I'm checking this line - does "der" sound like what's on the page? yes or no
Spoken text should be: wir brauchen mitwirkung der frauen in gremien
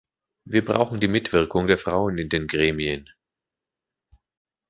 yes